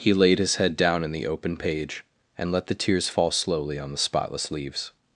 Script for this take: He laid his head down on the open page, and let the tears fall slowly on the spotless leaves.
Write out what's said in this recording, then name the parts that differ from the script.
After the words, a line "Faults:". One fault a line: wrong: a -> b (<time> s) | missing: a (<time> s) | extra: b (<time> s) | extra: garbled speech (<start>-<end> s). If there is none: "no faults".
He laid his head down in the open page, and let the tears fall slowly on the spotless leaves.
Faults:
wrong: on -> in (1.0 s)